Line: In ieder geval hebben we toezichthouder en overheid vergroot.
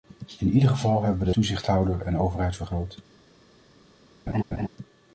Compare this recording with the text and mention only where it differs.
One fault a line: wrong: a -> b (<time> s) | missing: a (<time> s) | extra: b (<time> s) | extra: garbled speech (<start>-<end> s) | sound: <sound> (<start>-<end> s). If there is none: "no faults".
sound: laugh (4.3-4.7 s)